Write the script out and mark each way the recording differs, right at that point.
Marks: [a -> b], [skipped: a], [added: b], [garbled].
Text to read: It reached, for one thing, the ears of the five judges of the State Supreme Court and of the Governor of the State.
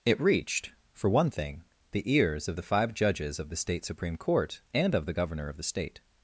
It reached, for one thing, the ears of the five judges of the State Supreme Court and of the Governor of the State.